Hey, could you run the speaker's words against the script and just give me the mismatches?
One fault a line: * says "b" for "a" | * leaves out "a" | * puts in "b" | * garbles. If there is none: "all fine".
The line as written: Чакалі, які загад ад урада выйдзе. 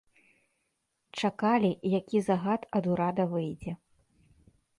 all fine